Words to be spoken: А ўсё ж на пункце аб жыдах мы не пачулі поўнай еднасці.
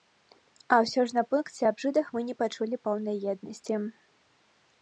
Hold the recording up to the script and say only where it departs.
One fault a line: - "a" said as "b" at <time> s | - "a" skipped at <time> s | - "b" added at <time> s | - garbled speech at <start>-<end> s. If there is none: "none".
none